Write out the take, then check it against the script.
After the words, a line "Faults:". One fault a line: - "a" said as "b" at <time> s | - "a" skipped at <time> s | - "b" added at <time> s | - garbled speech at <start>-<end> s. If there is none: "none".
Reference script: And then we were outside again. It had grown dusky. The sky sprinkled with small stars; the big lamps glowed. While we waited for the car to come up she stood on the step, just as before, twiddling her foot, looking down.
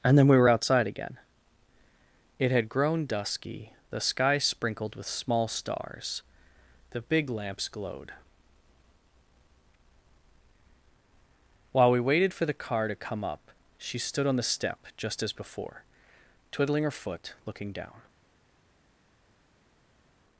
And then we were outside again. It had grown dusky. The sky sprinkled with small stars; the big lamps glowed. While we waited for the car to come up she stood on the step, just as before, twiddling her foot, looking down.
Faults:
none